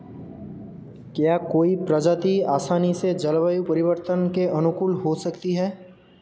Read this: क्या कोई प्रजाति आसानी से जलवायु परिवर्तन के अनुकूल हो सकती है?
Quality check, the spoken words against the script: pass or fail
pass